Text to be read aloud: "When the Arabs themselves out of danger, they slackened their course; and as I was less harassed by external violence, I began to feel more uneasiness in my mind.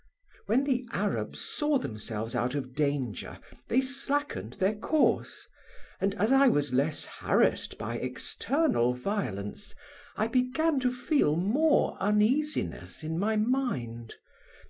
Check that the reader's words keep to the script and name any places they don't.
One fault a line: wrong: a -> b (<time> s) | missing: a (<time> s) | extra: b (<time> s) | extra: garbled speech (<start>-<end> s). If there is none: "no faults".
extra: saw (1.4 s)